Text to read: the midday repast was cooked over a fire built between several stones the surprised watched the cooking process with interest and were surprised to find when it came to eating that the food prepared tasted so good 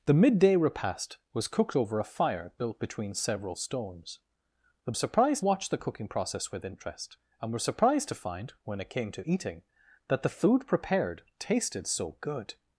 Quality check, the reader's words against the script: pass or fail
pass